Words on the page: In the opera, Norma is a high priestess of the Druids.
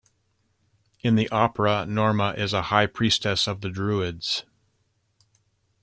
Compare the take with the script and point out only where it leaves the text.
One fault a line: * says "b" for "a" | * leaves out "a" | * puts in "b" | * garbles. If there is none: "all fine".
all fine